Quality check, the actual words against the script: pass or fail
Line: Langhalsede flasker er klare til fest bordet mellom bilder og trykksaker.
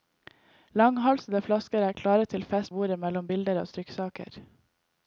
pass